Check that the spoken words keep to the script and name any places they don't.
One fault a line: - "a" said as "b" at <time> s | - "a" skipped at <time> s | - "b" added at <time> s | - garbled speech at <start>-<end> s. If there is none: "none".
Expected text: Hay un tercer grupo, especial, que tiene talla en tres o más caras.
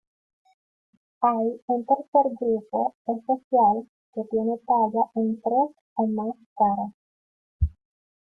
none